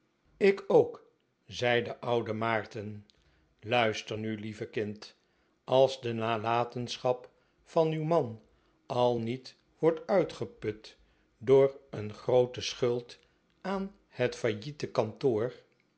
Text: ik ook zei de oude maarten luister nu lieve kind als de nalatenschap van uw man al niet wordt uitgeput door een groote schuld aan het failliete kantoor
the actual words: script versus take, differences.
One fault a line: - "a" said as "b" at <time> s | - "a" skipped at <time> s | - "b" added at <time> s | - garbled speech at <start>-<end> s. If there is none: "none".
none